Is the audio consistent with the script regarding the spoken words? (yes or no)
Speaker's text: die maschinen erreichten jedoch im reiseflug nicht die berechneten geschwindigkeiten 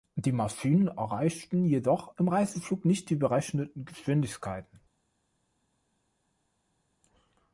yes